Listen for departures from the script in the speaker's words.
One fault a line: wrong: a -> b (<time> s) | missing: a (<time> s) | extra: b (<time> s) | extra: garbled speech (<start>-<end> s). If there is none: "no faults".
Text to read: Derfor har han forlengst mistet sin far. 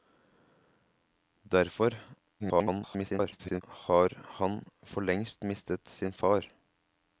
extra: garbled speech (2.4-3.6 s)